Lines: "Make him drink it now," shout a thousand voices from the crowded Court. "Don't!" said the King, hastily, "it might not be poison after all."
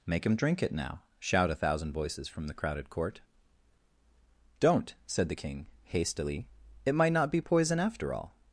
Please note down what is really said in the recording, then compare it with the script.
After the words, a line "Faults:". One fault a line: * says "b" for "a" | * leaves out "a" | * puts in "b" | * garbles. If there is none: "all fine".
"Make him drink it now," shout a thousand voices from the crowded Court. "Don't!" said the King, hastily, "it might not be poison after all."
Faults:
all fine